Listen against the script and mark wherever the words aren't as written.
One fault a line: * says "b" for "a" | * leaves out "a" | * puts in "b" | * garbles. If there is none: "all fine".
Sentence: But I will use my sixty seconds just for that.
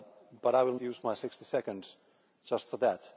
all fine